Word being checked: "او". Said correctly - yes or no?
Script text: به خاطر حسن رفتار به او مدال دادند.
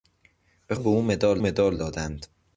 yes